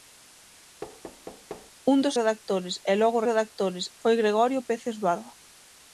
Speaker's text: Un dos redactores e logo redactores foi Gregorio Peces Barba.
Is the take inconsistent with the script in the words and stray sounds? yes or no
yes